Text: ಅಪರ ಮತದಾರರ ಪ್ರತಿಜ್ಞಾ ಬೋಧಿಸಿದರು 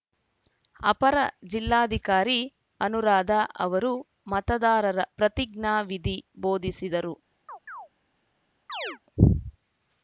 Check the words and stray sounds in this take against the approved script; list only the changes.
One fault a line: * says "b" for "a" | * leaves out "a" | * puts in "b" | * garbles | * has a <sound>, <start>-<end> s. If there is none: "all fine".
* puts in "ಜಿಲ್ಲಾಧಿಕಾರಿ ಅನುರಾಧ ಅವರು"
* puts in "ವಿಧಿ"
* has a chirp, 7.5-7.9 s
* has a chirp, 8.7-9.0 s